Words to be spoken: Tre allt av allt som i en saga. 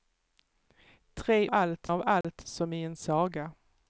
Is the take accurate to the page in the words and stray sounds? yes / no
no